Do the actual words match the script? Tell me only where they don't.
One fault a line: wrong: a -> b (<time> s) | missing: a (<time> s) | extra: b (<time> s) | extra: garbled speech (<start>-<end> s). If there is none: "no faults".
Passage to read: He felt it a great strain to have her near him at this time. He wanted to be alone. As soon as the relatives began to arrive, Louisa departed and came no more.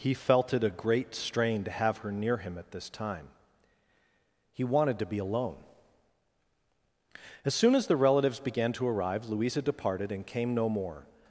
no faults